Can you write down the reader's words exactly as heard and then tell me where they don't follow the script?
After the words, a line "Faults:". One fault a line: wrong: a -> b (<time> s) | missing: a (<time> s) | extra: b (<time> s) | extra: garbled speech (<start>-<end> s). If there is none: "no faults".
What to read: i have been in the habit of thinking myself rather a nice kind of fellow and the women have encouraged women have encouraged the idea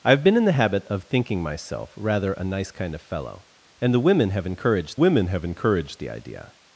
i have been in the habit of thinking myself rather a nice kind of fellow and the women have encouraged women have encouraged the idea
Faults:
no faults